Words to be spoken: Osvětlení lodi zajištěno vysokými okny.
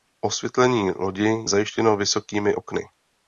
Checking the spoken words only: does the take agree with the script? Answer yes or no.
yes